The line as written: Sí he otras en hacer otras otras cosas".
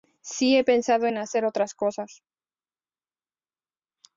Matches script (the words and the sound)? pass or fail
fail